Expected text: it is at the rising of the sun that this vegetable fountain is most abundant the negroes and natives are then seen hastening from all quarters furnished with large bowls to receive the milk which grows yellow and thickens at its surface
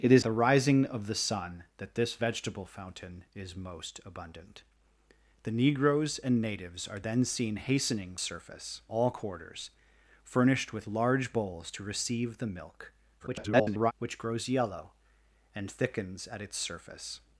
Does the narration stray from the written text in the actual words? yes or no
yes